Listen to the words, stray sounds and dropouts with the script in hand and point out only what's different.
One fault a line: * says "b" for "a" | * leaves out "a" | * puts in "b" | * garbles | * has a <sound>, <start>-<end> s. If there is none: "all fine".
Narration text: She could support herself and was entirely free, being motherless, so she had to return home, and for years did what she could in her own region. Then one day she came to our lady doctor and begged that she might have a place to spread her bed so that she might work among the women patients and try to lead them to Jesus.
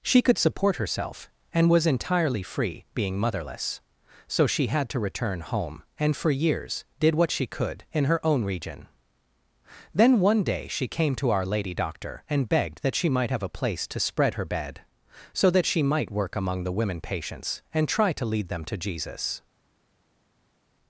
all fine